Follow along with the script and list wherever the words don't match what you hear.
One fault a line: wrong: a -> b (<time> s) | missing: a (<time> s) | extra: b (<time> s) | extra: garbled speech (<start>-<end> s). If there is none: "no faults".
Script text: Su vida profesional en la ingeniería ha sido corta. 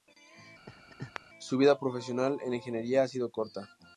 no faults